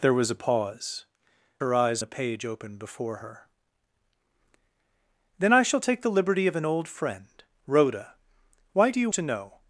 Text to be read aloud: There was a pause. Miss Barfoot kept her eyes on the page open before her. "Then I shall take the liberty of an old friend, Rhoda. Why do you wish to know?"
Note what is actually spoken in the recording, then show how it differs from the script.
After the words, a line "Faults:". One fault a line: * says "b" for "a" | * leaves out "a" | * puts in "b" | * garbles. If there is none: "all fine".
There was a pause. Her eyes the page open before her. "Then I shall take the liberty of an old friend, Rhoda. Why do you to know?"
Faults:
* leaves out "Miss Barfoot kept"
* leaves out "on"
* leaves out "wish"